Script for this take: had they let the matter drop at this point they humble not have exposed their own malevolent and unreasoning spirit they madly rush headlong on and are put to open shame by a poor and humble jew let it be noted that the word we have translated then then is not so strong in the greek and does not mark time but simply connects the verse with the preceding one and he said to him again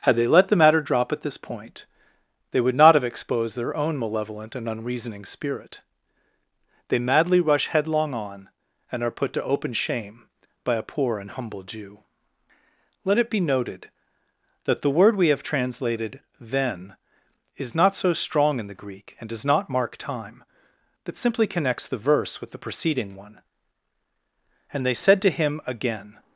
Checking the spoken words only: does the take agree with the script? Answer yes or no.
no